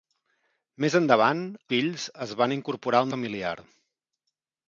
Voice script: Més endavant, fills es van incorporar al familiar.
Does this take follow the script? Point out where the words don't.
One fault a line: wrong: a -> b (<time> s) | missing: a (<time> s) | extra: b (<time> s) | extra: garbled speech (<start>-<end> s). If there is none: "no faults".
no faults